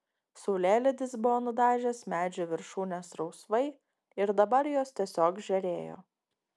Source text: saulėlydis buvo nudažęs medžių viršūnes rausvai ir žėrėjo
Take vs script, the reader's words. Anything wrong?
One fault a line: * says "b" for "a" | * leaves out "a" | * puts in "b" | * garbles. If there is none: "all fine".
* puts in "dabar jos tiesiog"